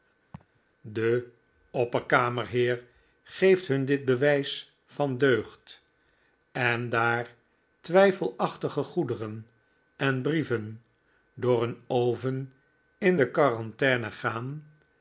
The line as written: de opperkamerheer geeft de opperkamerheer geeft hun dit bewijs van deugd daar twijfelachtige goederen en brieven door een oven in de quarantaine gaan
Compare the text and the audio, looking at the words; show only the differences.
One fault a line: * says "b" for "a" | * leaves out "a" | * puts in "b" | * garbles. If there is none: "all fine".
* leaves out "de opperkamerheer geeft"
* puts in "en"